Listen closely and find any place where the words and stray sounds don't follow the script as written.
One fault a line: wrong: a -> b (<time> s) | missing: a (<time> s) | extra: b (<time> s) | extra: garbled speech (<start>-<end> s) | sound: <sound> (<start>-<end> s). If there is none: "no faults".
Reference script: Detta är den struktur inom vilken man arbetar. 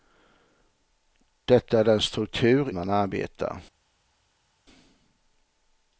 missing: inom vilken (2.7 s)